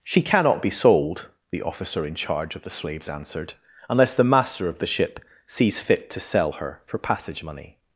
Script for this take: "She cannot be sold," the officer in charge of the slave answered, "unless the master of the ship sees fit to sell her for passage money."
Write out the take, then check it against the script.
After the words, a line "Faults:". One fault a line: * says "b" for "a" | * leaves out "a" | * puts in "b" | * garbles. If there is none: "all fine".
"She cannot be sold," the officer in charge of the slaves answered, "unless the master of the ship sees fit to sell her for passage money."
Faults:
* says "slaves" for "slave"